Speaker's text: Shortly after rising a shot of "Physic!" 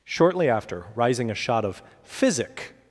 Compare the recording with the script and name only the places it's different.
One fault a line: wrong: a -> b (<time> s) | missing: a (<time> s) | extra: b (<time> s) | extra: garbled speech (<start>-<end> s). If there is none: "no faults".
no faults